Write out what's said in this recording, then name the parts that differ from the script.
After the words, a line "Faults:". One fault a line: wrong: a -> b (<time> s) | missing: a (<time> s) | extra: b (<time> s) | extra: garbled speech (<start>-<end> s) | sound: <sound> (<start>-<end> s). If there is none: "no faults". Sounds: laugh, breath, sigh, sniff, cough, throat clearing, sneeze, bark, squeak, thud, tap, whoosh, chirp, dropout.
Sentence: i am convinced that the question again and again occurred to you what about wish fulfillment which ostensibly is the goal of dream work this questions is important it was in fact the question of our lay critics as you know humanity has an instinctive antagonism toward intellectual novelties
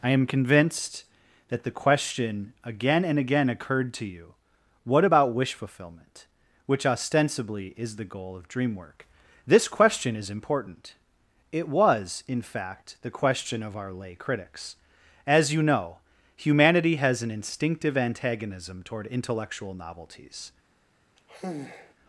i am convinced that the question again and again occurred to you what about wish fulfillment which ostensibly is the goal of dream work this question is important it was in fact the question of our lay critics as you know humanity has an instinctive antagonism toward intellectual novelties
Faults:
wrong: questions -> question (9.7 s)
sound: sigh (21.2-21.9 s)